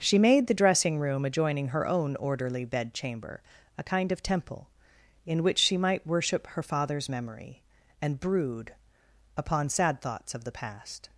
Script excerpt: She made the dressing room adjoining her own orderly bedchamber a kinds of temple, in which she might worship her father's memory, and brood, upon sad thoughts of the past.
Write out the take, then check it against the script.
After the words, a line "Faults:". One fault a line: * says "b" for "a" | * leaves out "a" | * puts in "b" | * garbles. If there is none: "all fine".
She made the dressing room adjoining her own orderly bedchamber a kind of temple, in which she might worship her father's memory, and brood, upon sad thoughts of the past.
Faults:
* says "kind" for "kinds"